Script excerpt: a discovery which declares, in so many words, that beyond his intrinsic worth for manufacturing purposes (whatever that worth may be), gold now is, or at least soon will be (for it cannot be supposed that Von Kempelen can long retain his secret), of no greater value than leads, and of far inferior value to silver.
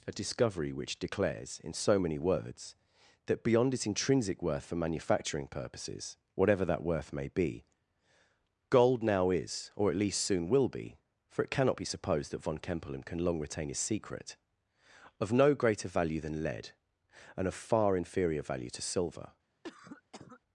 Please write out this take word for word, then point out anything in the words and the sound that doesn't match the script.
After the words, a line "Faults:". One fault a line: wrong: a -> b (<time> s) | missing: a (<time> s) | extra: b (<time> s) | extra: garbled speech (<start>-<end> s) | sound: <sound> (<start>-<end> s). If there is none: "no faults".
a discovery which declares, in so many words, that beyond its intrinsic worth for manufacturing purposes (whatever that worth may be), gold now is, or at least soon will be (for it cannot be supposed that Von Kempelen can long retain his secret), of no greater value than lead, and of far inferior value to silver.
Faults:
wrong: his -> its (3.7 s)
wrong: leads -> lead (16.4 s)
sound: cough (19.6-20.4 s)